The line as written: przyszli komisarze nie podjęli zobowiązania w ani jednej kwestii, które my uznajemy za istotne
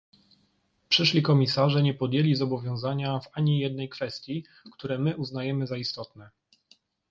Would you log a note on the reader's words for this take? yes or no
no